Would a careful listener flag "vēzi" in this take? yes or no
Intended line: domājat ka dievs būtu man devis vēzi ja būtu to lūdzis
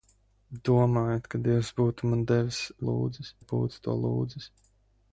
yes